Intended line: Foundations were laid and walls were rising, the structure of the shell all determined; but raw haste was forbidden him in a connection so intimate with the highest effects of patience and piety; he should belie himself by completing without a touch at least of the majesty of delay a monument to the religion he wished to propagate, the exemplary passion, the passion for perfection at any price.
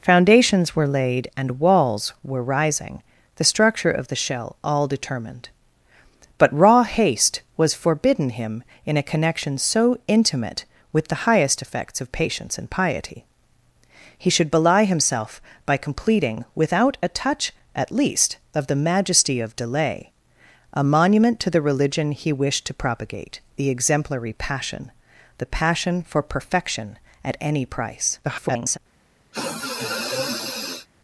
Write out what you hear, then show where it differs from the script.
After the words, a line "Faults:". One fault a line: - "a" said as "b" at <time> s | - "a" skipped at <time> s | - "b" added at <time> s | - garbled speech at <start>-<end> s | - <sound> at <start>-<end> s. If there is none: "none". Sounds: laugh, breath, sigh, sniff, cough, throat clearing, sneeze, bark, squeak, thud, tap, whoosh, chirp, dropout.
Foundations were laid and walls were rising, the structure of the shell all determined; but raw haste was forbidden him in a connection so intimate with the highest effects of patience and piety; he should belie himself by completing without a touch at least of the majesty of delay a monument to the religion he wished to propagate, the exemplary passion, the passion for perfection at any price. [garbled]
Faults:
- garbled speech at 28.2-28.8 s
- sniff at 29.3-30.9 s